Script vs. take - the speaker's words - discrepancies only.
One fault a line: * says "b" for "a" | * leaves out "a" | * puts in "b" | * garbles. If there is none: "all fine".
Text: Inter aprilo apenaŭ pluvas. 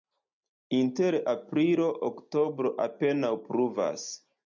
* puts in "oktobro"